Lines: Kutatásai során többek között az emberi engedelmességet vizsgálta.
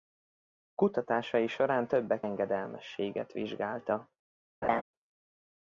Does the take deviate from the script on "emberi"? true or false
true